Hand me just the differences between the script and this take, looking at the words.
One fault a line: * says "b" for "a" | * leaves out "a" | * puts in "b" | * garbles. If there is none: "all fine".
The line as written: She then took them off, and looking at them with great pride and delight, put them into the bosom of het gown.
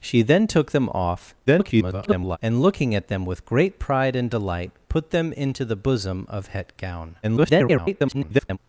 * garbles
* garbles